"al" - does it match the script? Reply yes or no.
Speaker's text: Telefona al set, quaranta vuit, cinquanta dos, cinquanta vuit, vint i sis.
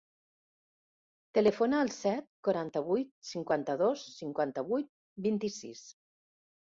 yes